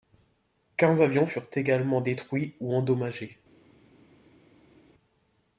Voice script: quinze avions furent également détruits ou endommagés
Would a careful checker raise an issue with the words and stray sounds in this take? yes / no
no